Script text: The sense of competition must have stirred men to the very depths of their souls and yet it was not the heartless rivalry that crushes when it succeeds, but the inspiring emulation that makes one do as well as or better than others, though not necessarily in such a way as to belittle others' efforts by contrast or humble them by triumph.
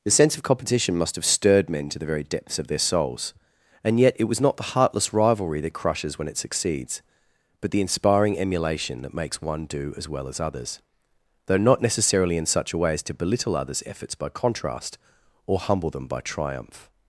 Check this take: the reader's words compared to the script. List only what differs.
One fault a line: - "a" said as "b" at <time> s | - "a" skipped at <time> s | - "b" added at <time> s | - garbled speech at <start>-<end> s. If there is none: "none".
- "or better than" skipped at 10.4 s